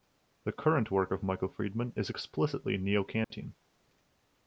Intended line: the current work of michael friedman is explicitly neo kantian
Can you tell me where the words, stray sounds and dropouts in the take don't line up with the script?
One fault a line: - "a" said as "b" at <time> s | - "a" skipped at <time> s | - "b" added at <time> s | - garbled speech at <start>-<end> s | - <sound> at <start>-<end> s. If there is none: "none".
- dropout at 3.2-3.3 s